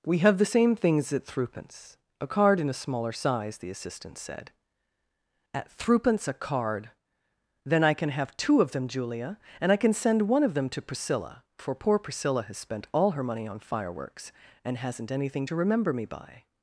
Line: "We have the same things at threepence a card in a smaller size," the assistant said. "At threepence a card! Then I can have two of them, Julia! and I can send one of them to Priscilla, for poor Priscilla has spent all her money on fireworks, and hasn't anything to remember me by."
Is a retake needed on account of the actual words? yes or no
no